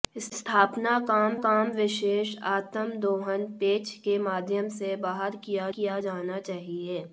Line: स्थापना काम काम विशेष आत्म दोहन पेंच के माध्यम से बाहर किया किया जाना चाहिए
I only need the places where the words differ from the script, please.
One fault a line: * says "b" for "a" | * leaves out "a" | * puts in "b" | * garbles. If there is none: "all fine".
all fine